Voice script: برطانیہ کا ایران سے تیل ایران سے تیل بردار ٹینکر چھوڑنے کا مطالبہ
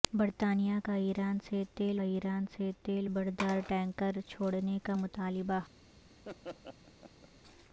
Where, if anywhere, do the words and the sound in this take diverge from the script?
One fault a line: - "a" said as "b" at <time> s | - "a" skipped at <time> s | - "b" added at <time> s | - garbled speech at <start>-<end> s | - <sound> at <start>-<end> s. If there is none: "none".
- laugh at 6.2-7.3 s